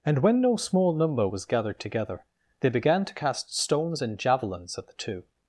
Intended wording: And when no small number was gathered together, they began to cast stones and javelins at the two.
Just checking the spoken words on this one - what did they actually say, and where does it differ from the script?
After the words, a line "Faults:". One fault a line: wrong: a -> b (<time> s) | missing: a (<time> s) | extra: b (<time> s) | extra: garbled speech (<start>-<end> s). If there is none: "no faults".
And when no small number was gathered together, they began to cast stones and javelins at the two.
Faults:
no faults